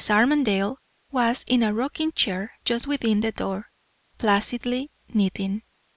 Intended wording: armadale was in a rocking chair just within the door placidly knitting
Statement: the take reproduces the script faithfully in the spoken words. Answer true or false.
true